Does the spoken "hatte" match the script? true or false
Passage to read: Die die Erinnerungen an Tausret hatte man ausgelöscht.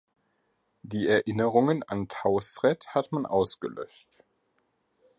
false